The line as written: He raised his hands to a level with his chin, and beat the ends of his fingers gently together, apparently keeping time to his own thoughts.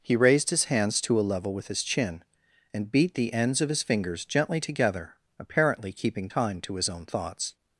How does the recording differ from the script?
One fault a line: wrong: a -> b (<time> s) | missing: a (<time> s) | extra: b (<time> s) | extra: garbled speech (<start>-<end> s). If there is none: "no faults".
no faults